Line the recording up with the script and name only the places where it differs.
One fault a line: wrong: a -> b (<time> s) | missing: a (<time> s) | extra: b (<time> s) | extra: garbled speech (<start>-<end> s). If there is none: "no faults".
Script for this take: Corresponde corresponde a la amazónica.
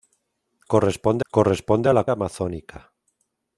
no faults